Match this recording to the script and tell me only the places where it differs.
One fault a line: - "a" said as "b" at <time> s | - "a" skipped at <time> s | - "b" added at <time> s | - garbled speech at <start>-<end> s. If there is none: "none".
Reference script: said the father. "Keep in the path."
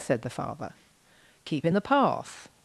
none